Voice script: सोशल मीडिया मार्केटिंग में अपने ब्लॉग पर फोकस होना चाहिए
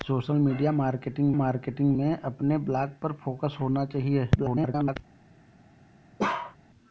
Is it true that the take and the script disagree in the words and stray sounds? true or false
true